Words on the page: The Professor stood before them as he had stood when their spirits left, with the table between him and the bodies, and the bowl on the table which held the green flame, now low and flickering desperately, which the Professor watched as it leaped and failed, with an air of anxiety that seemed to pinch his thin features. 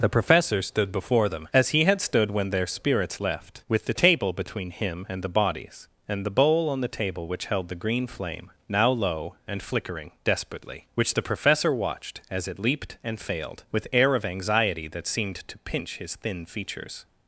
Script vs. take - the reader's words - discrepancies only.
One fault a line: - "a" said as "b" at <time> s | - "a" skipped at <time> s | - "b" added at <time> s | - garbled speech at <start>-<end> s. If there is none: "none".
- "an" skipped at 13.9 s